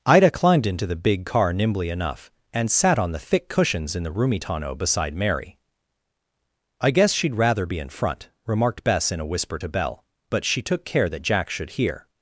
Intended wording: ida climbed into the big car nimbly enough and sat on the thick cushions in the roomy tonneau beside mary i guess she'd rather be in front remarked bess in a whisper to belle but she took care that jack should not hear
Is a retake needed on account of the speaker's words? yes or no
yes